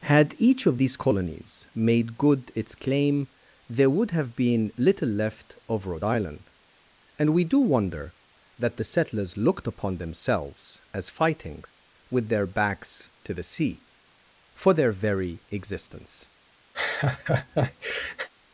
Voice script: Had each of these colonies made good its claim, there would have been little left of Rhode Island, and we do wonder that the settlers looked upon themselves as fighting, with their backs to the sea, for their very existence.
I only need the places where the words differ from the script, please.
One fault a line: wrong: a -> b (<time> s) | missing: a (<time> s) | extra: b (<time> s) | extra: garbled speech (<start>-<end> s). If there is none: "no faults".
no faults